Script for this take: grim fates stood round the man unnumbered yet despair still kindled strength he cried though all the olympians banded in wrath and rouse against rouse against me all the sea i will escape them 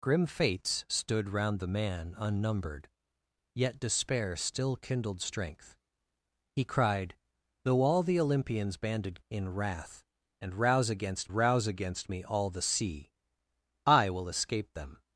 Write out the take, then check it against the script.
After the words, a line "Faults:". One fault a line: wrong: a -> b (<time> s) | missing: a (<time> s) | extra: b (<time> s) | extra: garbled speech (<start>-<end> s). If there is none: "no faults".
grim fates stood round the man unnumbered yet despair still kindled strength he cried though all the olympians banded in wrath and rouse against rouse against me all the sea i will escape them
Faults:
no faults